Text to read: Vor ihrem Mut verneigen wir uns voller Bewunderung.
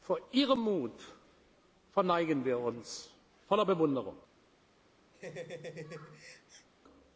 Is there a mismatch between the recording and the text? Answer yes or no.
no